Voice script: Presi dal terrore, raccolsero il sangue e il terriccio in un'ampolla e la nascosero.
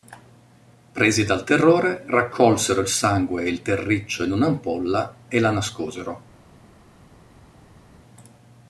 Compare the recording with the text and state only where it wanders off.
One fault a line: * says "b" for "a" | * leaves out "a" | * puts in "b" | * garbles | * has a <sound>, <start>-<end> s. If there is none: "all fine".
all fine